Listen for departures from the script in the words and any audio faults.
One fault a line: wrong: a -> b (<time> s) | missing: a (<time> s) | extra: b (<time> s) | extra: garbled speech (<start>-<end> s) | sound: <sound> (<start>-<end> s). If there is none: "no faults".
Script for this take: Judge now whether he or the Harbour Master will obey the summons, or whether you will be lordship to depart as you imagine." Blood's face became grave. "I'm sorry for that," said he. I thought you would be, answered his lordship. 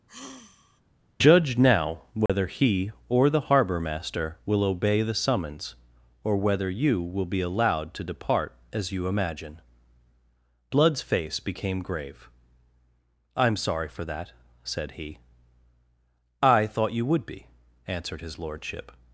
sound: sigh (0.1-0.8 s)
sound: dropout (2.3-2.3 s)
wrong: lordship -> allowed (7.4 s)